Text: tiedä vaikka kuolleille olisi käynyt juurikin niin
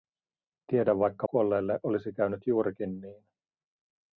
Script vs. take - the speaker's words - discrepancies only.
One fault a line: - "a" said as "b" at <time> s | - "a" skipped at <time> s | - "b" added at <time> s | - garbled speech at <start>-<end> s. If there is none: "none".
none